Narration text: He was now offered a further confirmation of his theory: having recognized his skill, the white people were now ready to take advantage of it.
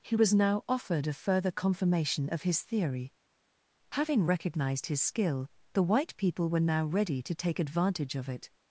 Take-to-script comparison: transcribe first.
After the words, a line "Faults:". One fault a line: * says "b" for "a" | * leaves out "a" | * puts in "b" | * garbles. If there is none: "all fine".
He was now offered a further confirmation of his theory: having recognized his skill, the white people were now ready to take advantage of it.
Faults:
all fine